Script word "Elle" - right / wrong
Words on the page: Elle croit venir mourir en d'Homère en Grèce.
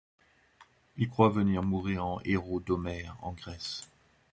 wrong